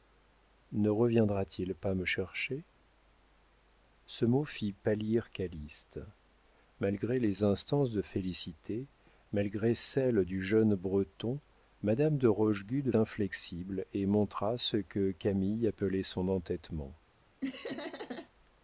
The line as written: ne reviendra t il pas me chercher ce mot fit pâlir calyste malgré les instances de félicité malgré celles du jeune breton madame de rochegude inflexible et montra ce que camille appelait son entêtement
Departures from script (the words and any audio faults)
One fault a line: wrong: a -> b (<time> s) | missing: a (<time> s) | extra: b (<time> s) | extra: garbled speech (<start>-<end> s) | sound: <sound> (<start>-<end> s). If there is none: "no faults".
sound: laugh (17.4-18.3 s)